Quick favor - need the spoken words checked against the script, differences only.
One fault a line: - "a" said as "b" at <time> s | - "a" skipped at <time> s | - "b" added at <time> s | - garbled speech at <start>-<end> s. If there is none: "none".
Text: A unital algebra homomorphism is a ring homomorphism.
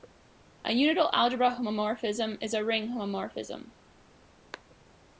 none